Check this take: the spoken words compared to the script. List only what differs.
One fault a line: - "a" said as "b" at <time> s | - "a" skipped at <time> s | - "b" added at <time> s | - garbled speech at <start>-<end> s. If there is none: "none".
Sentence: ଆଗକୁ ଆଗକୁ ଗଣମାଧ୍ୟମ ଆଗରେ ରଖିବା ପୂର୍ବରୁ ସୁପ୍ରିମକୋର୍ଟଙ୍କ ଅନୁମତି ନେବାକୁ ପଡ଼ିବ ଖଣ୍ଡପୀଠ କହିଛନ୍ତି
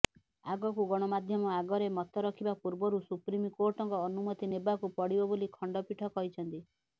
- "ଆଗକୁ" skipped at 0.8 s
- "ମତ" added at 2.0 s
- "ବୋଲି" added at 5.3 s